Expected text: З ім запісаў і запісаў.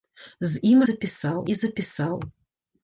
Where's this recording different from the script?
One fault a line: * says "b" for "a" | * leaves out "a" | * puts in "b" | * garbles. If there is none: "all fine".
all fine